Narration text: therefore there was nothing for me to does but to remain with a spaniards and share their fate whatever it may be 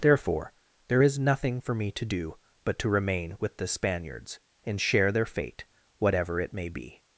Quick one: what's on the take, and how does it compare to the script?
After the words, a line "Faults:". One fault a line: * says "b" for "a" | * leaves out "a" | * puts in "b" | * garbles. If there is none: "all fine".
therefore there is nothing for me to do but to remain with the spaniards and share their fate whatever it may be
Faults:
* says "is" for "was"
* says "do" for "does"
* says "the" for "a"